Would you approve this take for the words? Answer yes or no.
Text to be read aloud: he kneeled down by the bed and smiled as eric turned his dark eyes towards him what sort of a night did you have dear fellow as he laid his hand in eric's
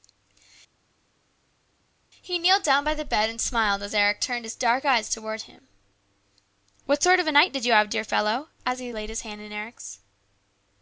yes